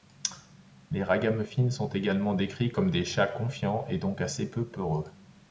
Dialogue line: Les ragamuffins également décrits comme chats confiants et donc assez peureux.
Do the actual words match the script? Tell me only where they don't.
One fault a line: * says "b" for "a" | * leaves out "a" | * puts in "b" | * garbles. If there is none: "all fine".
* puts in "sont"
* puts in "des"
* puts in "peu"